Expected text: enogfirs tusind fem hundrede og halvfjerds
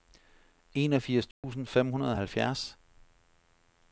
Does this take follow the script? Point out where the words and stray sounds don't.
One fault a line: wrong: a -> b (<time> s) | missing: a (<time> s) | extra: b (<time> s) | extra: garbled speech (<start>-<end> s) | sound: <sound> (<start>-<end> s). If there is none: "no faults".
sound: dropout (1.3-1.4 s)